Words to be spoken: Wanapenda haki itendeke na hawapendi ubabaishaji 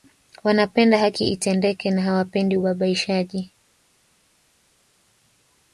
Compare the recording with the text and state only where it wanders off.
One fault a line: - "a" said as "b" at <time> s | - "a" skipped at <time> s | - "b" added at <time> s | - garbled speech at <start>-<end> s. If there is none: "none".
none